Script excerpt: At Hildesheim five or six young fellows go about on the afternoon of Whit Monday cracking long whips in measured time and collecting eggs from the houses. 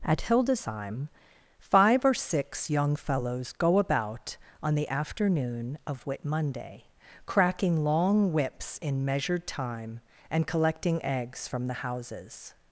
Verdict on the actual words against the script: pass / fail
pass